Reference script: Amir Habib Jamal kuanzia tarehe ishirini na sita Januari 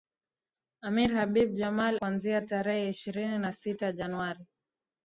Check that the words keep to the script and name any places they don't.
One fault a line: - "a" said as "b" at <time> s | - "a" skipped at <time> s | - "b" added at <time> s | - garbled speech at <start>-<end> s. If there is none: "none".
none